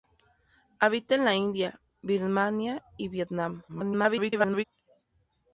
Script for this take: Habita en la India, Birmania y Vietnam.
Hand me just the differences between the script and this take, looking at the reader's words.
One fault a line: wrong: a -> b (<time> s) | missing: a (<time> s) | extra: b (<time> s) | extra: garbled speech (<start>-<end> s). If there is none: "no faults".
extra: garbled speech (3.7-4.6 s)